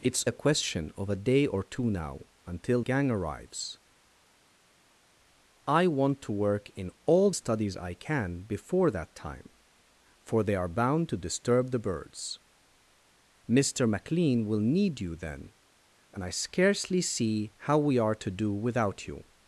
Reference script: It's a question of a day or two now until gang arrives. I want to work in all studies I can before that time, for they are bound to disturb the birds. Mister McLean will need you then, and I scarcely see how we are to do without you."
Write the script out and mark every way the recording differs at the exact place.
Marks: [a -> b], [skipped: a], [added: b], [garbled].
It's a question of a day or two now until gang arrives. I want to work in all studies I can before that time, for they are bound to disturb the birds. Mister McLean will need you then, and I scarcely see how we are to do without you."